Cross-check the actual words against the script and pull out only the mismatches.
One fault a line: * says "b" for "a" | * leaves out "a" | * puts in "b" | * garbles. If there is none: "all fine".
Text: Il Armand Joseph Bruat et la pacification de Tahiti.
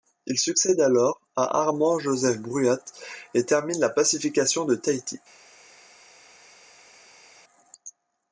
* puts in "succède alors à"
* puts in "termine"